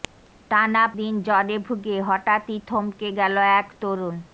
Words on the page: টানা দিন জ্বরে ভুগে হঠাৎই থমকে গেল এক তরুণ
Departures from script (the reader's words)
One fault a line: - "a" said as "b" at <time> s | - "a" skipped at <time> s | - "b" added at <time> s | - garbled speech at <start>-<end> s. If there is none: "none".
none